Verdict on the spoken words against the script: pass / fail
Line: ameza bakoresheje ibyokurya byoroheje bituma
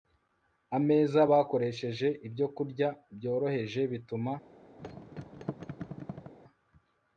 pass